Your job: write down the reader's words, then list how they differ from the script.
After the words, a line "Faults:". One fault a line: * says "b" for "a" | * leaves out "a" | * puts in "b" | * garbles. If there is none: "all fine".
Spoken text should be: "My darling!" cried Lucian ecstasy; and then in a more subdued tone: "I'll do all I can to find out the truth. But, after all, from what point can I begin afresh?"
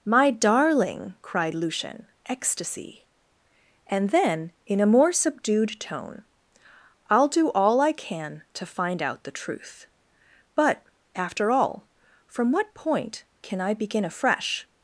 "My darling!" cried Lucian ecstasy; and then in a more subdued tone: "I'll do all I can to find out the truth. But, after all, from what point can I begin afresh?"
Faults:
all fine